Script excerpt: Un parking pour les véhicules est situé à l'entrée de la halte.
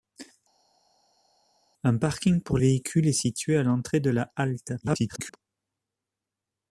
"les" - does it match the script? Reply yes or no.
no